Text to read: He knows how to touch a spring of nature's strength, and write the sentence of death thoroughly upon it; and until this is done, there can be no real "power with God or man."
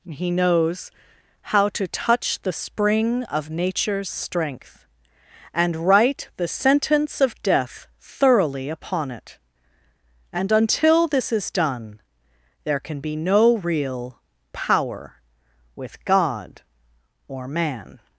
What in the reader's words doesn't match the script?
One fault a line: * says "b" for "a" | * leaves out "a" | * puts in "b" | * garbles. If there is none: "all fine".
* says "the" for "a"